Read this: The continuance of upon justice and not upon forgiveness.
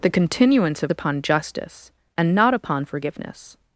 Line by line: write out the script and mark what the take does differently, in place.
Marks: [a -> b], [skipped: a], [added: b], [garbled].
The continuance of upon justice and not upon forgiveness.